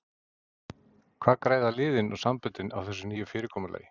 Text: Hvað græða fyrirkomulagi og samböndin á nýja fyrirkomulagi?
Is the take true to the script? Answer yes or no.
no